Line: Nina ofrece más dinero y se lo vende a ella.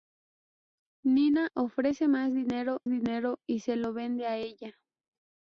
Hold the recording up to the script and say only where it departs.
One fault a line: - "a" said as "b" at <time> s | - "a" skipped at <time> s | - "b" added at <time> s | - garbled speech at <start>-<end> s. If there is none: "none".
- "dinero" added at 2.9 s